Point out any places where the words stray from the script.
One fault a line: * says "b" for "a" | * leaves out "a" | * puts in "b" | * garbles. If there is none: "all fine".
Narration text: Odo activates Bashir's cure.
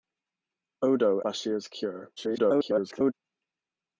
* leaves out "activates"
* garbles